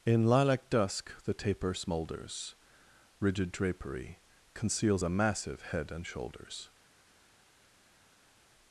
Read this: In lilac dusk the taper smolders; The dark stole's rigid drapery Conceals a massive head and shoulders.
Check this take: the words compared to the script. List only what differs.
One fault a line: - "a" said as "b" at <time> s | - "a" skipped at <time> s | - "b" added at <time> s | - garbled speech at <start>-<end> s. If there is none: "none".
- "The dark stole's" skipped at 2.5 s